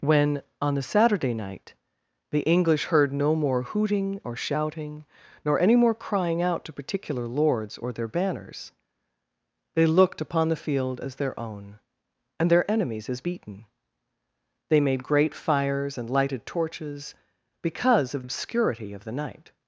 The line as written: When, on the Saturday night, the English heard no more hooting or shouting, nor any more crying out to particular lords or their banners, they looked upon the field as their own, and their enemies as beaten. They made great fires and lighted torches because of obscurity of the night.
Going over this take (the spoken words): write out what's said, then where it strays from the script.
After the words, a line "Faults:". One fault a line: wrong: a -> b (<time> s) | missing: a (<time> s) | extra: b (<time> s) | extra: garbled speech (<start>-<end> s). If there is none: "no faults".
When, on the Saturday night, the English heard no more hooting or shouting, nor any more crying out to particular lords or their banners, they looked upon the field as their own, and their enemies as beaten. They made great fires and lighted torches because of obscurity of the night.
Faults:
no faults